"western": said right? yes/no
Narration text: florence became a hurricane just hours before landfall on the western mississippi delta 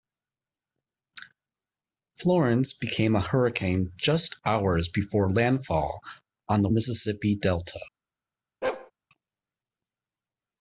no